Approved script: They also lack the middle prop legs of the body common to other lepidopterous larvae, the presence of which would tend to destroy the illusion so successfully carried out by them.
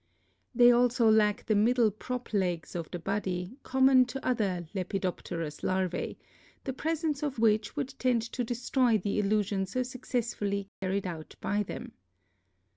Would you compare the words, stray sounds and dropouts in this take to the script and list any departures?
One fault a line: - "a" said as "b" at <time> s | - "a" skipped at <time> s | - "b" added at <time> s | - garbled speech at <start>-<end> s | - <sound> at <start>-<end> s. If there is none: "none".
- dropout at 10.7-10.8 s